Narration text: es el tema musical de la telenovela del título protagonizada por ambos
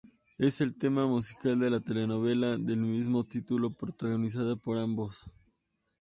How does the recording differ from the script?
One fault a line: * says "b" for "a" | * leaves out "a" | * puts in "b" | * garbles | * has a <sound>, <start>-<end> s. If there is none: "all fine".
* puts in "mismo"